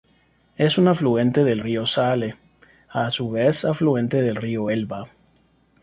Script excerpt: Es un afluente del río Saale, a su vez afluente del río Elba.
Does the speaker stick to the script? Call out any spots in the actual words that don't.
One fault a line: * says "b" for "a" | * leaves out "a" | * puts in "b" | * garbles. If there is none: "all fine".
all fine